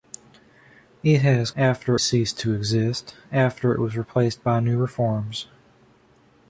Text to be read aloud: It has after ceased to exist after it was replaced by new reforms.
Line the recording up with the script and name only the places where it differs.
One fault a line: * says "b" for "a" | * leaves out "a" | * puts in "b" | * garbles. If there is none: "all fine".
all fine